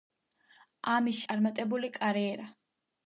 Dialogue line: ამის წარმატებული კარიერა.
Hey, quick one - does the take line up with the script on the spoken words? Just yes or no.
yes